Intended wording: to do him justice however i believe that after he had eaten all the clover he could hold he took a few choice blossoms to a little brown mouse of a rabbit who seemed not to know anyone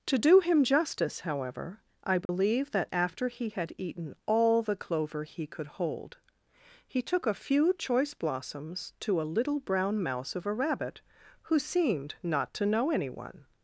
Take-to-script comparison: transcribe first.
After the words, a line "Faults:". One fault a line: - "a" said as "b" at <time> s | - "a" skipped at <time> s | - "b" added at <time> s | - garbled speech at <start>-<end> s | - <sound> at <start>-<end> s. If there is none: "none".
to do him justice however i believe that after he had eaten all the clover he could hold he took a few choice blossoms to a little brown mouse of a rabbit who seemed not to know anyone
Faults:
- dropout at 2.3-2.3 s